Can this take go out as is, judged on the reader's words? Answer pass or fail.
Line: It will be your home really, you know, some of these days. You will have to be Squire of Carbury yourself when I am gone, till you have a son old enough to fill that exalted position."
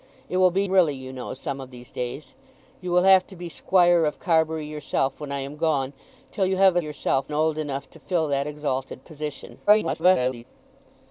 fail